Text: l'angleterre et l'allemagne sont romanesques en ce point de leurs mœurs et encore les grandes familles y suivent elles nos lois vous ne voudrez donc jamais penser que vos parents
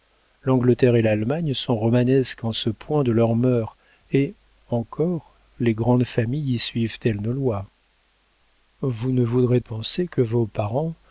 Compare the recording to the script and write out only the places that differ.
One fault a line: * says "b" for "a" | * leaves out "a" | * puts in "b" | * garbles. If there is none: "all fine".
* leaves out "donc jamais"